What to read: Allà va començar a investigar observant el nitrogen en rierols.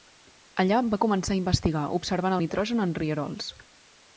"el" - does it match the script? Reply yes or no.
no